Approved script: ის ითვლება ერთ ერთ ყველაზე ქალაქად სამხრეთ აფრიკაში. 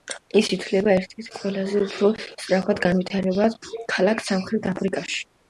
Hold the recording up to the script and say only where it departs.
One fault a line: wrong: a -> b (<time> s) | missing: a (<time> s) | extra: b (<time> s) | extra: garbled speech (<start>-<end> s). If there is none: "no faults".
extra: უფრო სწრაფად განვითარებად (1.9 s)